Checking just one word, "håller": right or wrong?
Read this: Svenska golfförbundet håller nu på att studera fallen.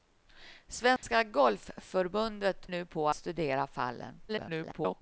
wrong